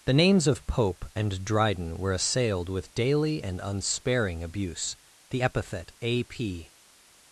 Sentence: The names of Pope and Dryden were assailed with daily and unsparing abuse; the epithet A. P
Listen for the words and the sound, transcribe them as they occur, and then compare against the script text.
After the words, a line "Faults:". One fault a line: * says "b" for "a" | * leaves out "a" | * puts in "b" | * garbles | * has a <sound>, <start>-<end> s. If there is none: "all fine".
The names of Pope and Dryden were assailed with daily and unsparing abuse; the epithet A. P
Faults:
all fine